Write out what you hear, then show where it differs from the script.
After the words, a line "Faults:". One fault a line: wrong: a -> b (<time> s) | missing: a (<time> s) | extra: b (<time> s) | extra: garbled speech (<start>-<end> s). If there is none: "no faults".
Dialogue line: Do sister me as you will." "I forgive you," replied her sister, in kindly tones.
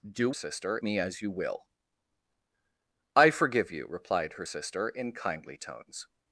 Do sister me as you will." "I forgive you," replied her sister, in kindly tones.
Faults:
no faults